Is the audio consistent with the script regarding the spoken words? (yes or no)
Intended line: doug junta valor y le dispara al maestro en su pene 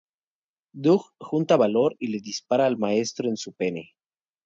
yes